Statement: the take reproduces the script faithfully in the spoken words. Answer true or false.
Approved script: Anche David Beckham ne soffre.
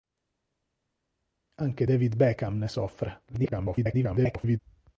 false